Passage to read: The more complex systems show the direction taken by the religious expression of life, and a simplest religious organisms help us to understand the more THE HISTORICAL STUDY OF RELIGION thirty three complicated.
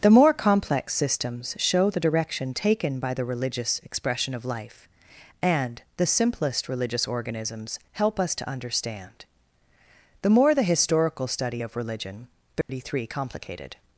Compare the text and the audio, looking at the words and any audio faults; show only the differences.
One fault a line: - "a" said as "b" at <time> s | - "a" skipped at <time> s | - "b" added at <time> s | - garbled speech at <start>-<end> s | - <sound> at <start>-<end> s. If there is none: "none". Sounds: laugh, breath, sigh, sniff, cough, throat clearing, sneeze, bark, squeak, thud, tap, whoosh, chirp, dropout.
- "a" said as "the" at 6.0 s
- dropout at 12.6-12.7 s